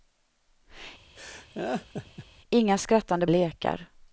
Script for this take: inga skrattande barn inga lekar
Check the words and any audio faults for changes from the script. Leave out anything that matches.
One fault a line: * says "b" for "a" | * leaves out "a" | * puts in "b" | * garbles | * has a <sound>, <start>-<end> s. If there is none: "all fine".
* has a laugh, 1.2-2.3 s
* leaves out "barn inga"